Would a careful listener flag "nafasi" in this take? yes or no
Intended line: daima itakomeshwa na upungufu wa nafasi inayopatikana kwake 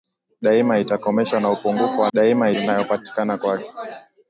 yes